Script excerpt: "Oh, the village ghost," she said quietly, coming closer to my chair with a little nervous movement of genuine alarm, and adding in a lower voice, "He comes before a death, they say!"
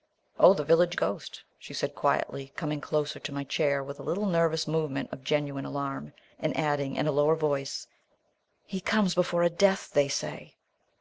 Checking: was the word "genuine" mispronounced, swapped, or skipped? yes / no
no